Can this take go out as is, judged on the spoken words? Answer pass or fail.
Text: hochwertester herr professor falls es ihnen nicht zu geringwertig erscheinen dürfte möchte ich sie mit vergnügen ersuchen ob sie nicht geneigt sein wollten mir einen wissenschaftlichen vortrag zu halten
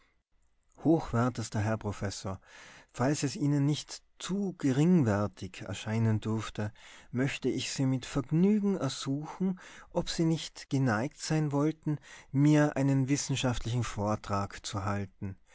pass